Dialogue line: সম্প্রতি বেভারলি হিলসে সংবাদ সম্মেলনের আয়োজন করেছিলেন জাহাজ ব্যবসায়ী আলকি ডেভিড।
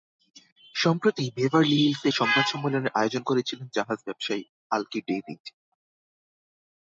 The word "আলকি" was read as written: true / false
true